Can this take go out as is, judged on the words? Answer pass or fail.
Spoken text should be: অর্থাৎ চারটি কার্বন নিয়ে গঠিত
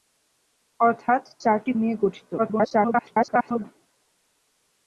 fail